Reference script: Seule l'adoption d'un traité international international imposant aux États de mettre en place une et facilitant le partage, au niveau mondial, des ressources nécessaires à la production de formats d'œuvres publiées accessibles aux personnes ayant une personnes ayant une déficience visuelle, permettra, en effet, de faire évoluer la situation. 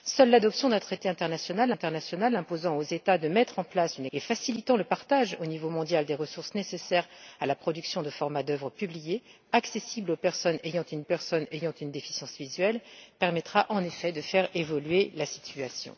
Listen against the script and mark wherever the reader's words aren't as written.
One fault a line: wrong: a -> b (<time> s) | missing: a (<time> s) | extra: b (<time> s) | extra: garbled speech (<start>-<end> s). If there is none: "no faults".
no faults